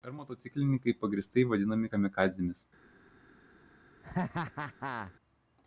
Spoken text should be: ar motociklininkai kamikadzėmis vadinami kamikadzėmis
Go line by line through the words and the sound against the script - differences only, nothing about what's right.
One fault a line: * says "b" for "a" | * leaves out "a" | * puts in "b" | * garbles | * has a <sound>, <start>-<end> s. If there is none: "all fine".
* says "pagrįstai" for "kamikadzėmis"
* has a laugh, 4.0-5.1 s